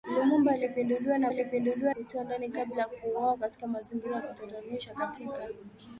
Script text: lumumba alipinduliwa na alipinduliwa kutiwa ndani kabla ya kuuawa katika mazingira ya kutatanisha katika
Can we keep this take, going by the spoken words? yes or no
yes